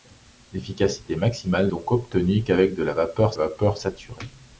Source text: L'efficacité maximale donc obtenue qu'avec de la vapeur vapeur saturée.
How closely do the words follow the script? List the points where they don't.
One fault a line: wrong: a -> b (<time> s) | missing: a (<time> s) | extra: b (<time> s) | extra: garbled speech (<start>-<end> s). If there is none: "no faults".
no faults